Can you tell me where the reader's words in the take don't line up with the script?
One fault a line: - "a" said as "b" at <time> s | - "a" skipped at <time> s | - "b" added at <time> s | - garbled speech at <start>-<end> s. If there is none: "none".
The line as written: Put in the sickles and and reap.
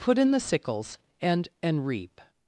none